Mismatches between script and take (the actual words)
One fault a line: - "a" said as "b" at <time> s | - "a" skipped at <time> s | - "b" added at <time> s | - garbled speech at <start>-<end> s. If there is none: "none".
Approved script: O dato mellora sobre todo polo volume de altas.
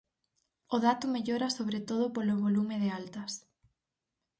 none